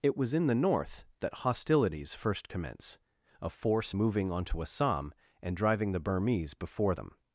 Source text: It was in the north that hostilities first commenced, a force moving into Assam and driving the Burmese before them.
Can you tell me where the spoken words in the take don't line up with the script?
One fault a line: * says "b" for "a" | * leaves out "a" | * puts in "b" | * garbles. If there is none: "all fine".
* says "commence" for "commenced"
* says "onto" for "into"